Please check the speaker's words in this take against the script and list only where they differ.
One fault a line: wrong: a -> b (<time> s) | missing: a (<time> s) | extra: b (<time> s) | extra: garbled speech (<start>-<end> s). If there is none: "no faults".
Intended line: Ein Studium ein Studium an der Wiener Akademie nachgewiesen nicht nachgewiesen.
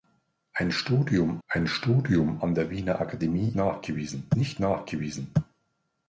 no faults